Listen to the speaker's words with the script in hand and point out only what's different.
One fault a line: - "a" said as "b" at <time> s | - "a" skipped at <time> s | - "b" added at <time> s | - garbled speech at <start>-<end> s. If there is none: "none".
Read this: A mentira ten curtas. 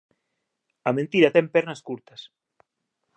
- "pernas" added at 1.5 s